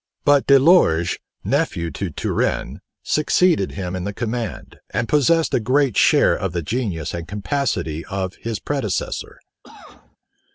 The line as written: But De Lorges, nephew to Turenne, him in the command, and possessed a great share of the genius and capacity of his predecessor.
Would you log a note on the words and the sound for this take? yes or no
yes